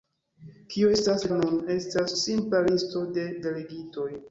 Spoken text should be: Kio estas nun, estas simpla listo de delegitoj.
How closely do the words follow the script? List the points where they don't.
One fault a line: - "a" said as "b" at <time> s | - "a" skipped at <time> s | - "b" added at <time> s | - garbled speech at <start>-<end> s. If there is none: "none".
none